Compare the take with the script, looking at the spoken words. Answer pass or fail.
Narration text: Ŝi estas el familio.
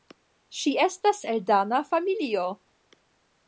fail